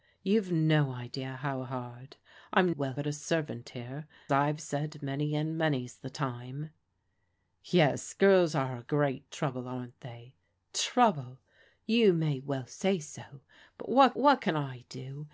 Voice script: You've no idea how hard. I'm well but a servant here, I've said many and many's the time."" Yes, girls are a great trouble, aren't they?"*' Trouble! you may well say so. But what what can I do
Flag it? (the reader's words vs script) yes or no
no